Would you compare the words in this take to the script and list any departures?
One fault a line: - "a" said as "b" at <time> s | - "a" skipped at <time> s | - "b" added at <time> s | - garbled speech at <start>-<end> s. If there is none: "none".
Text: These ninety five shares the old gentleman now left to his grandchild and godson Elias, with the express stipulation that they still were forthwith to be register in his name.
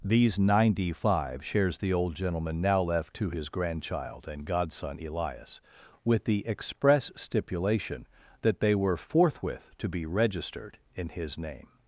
- "still" skipped at 8.8 s
- "register" said as "registered" at 10.0 s